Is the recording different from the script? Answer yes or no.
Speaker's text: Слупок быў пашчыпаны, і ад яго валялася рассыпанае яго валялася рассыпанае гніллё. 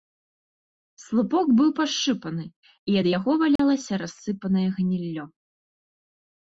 yes